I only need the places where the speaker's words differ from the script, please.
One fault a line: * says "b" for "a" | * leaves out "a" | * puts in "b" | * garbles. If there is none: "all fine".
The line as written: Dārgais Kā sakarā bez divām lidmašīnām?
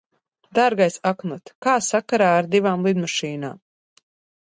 * puts in "Aknot"
* says "ar" for "bez"